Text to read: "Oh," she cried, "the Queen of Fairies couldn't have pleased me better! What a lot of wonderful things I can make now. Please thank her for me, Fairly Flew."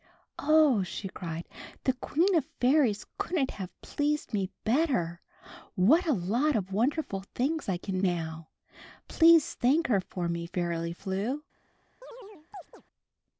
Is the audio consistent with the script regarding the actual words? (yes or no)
no